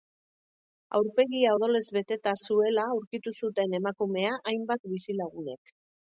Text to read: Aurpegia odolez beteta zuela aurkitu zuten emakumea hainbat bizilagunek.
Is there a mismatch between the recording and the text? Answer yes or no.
no